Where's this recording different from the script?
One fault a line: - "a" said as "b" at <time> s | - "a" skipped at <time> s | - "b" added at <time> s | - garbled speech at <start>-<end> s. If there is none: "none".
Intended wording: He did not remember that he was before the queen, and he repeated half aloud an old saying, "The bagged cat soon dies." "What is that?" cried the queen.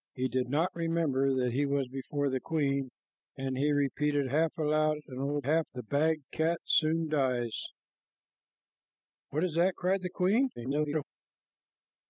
- "saying" said as "half" at 5.4 s
- garbled speech at 10.6-11.0 s